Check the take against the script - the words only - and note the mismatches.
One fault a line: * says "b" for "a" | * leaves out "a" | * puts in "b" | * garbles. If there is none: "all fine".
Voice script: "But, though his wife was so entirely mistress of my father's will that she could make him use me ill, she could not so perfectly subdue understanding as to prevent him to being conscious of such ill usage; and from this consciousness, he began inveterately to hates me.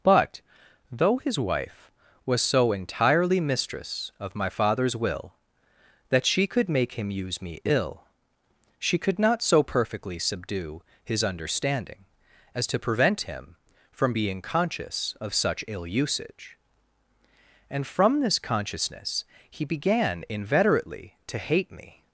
* puts in "his"
* says "from" for "to"
* says "hate" for "hates"